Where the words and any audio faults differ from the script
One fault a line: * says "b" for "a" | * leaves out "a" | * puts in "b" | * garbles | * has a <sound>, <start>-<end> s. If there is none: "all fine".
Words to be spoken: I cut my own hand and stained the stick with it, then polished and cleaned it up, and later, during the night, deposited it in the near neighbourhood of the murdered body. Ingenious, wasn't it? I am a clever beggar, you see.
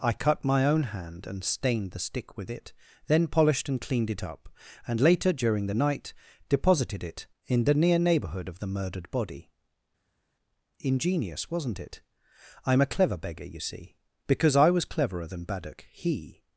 * puts in "Because I was cleverer than Baddock he"